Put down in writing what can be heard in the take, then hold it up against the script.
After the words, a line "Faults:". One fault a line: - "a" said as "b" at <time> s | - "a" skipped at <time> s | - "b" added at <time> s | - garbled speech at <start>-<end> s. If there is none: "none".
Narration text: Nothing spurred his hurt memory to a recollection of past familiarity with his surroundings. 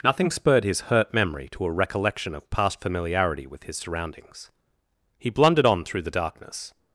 Nothing spurred his hurt memory to a recollection of past familiarity with his surroundings. He blundered on through the darkness
Faults:
- "He blundered on through the darkness" added at 5.2 s